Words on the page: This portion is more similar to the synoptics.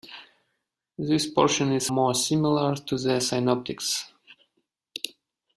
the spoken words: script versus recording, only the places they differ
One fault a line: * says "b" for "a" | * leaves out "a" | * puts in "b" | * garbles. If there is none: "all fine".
all fine